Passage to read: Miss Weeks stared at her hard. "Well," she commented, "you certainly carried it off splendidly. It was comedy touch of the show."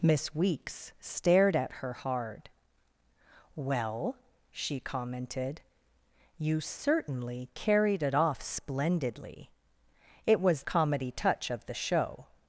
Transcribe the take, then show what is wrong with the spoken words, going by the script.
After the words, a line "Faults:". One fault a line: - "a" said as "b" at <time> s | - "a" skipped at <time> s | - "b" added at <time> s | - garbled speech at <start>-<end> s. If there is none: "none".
Miss Weeks stared at her hard. "Well," she commented, "you certainly carried it off splendidly. It was comedy touch of the show."
Faults:
none